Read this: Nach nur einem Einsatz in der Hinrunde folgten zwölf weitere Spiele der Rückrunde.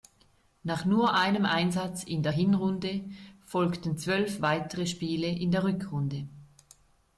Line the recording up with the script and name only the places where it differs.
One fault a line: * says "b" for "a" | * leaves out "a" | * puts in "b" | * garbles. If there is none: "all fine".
* puts in "in"